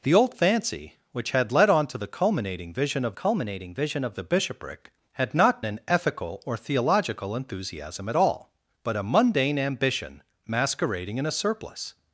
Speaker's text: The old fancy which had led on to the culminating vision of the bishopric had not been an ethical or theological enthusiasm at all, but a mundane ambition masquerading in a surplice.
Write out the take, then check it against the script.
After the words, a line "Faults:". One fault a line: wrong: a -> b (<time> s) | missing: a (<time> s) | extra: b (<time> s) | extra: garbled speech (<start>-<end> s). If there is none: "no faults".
The old fancy which had led on to the culminating vision of culminating vision of the bishopric had not an ethical or theological enthusiasm at all, but a mundane ambition masquerading in a surplice.
Faults:
extra: culminating vision of (3.1 s)
missing: been (5.6 s)